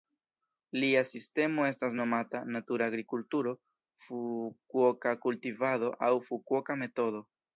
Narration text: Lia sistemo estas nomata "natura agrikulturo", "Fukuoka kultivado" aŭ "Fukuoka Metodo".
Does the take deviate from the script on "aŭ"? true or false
false